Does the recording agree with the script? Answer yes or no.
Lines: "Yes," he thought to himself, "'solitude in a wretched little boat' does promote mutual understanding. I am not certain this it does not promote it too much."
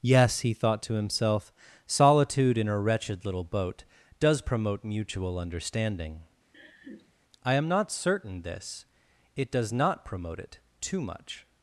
yes